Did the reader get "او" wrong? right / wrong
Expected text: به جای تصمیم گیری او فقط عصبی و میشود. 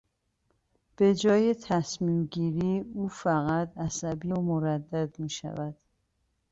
right